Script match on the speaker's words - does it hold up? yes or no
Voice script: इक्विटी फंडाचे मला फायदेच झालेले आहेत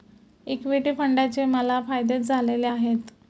yes